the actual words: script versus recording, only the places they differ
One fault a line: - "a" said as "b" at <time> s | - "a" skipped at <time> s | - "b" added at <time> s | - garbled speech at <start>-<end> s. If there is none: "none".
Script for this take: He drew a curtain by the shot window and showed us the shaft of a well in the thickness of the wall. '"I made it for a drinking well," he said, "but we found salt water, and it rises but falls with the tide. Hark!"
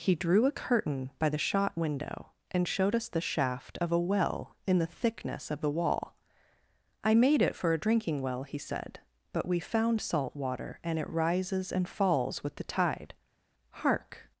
- "but" said as "and" at 11.7 s